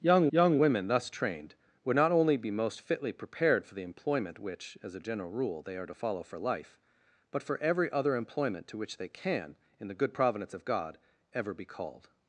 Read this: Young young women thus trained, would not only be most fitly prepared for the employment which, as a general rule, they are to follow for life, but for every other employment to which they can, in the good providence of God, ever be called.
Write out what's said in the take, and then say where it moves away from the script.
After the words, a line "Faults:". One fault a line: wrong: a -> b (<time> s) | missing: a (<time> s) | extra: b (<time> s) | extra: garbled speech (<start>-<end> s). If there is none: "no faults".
Young young women thus trained, would not only be most fitly prepared for the employment which, as a general rule, they are to follow for life, but for every other employment to which they can, in the good providence of God, ever be called.
Faults:
no faults